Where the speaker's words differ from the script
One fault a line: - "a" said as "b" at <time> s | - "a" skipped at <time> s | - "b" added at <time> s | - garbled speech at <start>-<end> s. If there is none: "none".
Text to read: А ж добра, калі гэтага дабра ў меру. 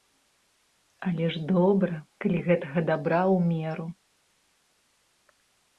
- "А" said as "Але" at 1.1 s